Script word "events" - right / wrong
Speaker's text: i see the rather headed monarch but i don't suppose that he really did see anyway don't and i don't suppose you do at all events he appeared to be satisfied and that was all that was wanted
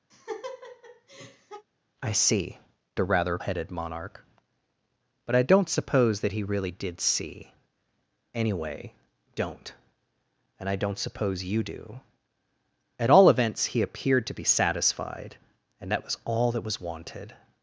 right